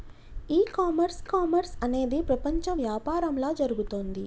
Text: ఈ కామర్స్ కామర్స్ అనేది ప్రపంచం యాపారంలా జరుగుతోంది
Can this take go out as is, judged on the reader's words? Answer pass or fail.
pass